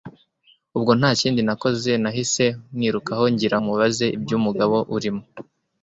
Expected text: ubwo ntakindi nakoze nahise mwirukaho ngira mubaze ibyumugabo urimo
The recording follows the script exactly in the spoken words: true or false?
true